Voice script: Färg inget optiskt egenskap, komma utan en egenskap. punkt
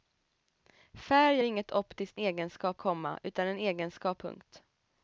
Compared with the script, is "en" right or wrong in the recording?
right